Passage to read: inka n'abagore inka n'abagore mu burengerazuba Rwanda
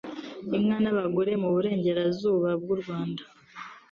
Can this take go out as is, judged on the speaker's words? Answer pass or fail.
fail